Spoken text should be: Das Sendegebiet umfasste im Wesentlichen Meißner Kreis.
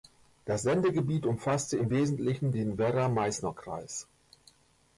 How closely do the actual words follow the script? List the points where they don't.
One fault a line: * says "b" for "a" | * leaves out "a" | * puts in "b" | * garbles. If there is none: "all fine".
* puts in "den Werra"